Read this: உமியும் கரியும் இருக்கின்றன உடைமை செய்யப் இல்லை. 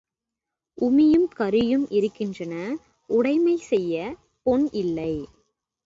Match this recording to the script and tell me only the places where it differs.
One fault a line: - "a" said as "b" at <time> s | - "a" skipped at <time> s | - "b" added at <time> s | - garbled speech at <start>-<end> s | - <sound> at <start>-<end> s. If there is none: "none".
- "பொன்" added at 4.5 s